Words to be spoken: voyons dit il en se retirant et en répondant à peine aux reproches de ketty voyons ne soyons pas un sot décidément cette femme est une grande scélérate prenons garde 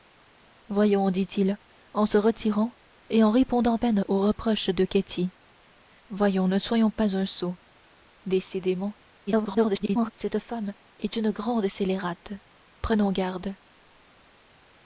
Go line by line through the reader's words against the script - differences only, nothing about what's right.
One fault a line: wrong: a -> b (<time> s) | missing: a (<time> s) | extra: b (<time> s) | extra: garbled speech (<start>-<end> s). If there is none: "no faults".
missing: à (3.8 s)
extra: garbled speech (9.3-10.1 s)